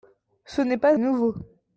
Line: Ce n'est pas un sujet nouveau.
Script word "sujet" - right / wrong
wrong